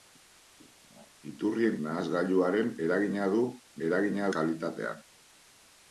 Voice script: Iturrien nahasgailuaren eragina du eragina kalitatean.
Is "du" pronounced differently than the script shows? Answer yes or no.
no